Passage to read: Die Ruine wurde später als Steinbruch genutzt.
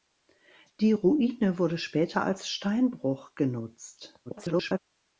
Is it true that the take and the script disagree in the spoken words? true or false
true